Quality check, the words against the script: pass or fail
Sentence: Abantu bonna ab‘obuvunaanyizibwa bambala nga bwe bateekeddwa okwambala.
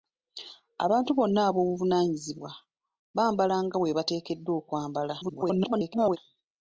fail